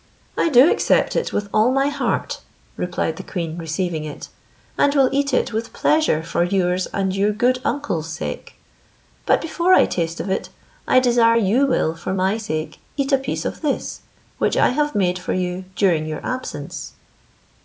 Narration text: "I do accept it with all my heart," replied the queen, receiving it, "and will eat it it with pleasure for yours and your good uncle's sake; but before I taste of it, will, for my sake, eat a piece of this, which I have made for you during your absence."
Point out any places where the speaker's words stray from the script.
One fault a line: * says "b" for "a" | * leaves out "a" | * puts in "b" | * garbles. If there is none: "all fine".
* leaves out "it"
* puts in "I desire you"